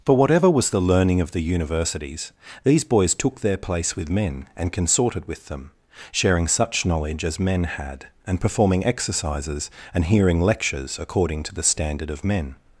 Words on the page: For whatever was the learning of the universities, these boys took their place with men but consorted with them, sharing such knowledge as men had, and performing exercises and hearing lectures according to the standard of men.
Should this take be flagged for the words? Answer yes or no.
yes